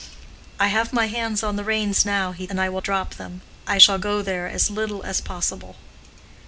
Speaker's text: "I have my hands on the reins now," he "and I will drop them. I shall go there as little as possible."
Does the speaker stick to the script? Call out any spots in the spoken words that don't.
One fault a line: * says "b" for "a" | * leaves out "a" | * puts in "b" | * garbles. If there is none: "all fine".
all fine